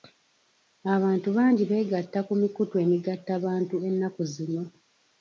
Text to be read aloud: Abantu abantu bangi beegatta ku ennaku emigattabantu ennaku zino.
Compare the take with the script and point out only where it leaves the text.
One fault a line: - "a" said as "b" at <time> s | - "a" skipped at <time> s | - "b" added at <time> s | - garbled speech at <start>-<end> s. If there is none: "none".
- "abantu" skipped at 1.3 s
- "ennaku" said as "mikutu" at 2.4 s